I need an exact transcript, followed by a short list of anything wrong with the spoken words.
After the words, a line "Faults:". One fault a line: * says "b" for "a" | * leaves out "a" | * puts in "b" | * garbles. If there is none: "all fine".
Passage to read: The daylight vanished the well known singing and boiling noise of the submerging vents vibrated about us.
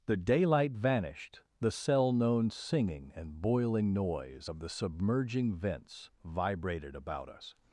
The daylight vanished the cell known singing and boiling noise of the submerging vents vibrated about us.
Faults:
* says "cell" for "well"